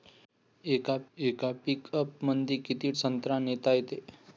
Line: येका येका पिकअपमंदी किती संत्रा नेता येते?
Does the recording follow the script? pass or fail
pass